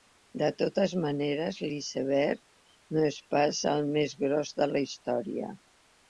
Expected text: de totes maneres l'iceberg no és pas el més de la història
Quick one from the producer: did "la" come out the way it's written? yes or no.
yes